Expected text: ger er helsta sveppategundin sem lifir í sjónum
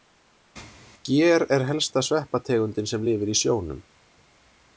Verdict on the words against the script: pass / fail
pass